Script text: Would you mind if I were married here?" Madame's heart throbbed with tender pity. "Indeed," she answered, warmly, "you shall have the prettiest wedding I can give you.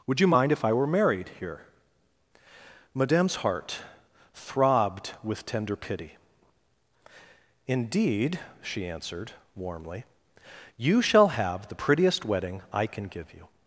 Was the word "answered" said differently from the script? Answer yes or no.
no